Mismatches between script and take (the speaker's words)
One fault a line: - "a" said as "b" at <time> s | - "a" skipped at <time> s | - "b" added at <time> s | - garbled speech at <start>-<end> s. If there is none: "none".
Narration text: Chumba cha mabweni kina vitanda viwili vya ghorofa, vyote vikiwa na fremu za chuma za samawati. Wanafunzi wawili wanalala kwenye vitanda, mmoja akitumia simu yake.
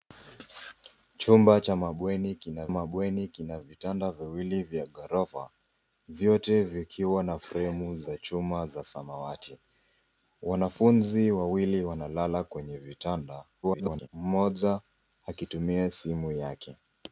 - "mabweni kina" added at 2.7 s
- garbled speech at 13.6-14.1 s